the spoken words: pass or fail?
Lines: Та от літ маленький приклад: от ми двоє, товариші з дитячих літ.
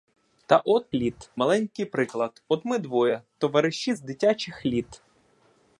pass